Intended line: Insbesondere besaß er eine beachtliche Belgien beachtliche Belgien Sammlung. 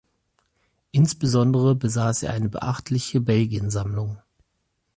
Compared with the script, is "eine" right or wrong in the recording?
right